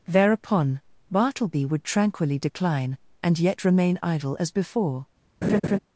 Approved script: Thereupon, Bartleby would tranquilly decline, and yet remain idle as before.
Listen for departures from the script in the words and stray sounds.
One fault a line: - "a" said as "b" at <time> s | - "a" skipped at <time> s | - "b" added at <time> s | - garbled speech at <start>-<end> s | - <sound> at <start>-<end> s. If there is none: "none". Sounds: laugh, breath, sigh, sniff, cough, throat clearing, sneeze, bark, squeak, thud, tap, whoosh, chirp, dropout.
- laugh at 5.4-5.8 s